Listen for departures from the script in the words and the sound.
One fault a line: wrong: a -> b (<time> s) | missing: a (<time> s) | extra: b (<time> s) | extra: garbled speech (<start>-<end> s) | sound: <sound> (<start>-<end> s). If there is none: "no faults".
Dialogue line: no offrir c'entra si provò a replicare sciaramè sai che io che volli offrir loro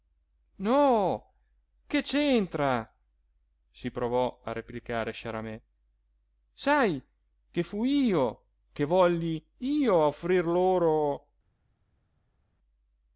wrong: offrir -> che (1.9 s)
extra: fui (7.6 s)
extra: io (9.6 s)